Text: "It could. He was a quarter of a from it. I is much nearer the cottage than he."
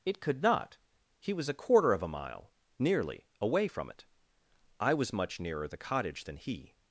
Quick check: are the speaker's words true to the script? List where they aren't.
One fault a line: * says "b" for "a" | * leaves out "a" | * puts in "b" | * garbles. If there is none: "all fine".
* puts in "not"
* puts in "mile nearly away"
* says "was" for "is"